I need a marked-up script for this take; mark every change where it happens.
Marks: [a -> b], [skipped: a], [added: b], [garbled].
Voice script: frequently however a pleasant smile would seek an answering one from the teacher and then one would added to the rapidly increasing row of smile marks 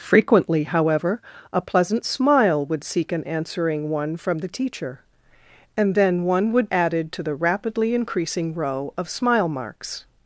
frequently however a pleasant smile would seek an answering one from the teacher and then one would added to the rapidly increasing row of smile marks